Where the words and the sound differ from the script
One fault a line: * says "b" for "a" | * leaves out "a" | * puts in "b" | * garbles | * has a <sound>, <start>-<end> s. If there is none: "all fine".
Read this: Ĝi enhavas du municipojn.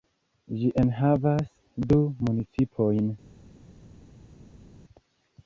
all fine